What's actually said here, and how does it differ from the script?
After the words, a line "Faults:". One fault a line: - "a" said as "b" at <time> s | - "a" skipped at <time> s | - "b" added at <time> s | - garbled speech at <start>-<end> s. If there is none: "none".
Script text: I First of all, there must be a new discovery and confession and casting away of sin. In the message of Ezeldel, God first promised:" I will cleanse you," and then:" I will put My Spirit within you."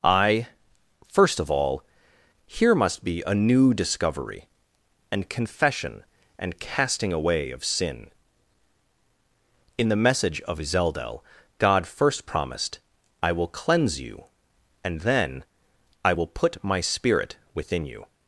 I First of all, here must be a new discovery and confession and casting away of sin. In the message of Ezeldel, God first promised:" I will cleanse you," and then:" I will put My Spirit within you."
Faults:
- "there" said as "here" at 2.5 s